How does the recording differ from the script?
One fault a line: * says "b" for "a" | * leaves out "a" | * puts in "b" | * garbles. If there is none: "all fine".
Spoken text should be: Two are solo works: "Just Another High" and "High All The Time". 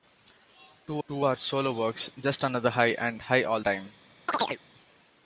* puts in "two"
* leaves out "The"